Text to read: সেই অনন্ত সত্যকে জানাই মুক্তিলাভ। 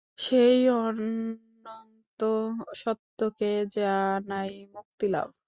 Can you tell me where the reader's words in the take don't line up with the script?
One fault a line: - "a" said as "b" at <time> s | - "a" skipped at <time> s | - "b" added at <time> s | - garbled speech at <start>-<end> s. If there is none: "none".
none